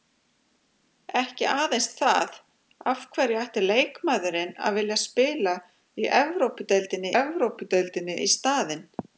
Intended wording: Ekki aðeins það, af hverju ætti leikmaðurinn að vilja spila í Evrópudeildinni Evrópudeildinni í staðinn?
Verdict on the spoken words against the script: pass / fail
pass